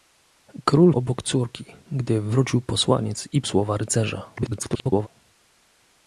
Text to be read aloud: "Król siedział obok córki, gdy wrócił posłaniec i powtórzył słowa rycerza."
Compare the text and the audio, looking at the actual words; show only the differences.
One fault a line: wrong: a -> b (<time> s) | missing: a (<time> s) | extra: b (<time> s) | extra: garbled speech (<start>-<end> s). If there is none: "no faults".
missing: siedział (0.9 s)
missing: powtórzył (3.4 s)
extra: garbled speech (4.4-5.1 s)